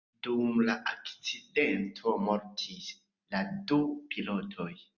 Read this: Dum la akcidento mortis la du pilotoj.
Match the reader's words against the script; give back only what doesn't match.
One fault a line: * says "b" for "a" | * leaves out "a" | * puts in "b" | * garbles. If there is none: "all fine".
all fine